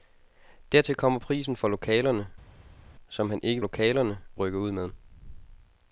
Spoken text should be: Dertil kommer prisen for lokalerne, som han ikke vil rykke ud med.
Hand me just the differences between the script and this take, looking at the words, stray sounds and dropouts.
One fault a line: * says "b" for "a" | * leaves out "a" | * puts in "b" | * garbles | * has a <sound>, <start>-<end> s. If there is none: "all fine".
* says "lokalerne" for "vil"